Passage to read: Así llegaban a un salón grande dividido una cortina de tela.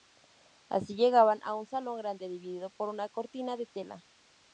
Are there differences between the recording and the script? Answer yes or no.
yes